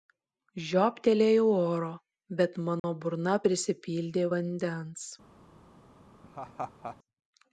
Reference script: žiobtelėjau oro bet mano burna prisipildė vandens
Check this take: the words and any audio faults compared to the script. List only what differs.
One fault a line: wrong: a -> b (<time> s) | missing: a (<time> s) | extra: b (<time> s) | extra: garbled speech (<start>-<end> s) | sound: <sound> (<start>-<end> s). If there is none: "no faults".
sound: dropout (2.8-2.8 s)
sound: laugh (6.2-7.0 s)